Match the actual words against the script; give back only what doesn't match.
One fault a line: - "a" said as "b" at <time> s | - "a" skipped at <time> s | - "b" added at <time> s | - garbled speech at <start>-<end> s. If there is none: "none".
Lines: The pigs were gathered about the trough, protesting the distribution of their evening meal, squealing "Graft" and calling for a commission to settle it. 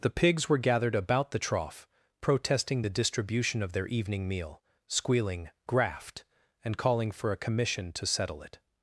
none